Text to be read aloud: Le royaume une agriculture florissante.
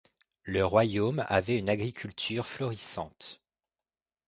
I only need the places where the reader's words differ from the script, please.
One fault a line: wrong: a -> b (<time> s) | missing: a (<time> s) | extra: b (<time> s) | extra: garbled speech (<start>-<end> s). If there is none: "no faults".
extra: avait (1.3 s)